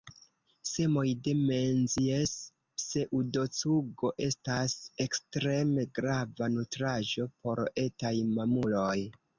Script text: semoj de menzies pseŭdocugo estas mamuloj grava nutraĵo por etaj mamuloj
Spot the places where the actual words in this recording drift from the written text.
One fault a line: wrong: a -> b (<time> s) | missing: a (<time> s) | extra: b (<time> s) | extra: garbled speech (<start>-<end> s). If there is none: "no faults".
wrong: mamuloj -> ekstreme (5.1 s)